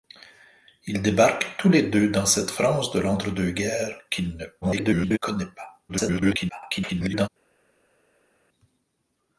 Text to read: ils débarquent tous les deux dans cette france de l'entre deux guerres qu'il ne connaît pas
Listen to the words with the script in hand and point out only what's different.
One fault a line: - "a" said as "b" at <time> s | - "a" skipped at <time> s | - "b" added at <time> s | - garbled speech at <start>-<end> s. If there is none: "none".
- garbled speech at 4.6-5.2 s
- garbled speech at 5.9-7.3 s